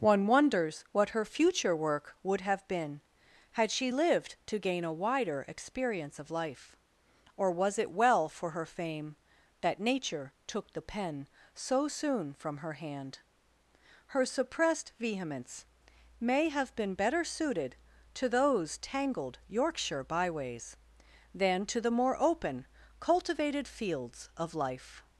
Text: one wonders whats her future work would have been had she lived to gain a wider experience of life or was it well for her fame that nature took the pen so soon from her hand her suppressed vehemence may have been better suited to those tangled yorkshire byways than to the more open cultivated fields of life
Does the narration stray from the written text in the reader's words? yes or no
yes